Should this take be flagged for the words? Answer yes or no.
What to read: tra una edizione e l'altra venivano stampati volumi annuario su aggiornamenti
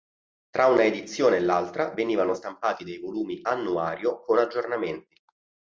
yes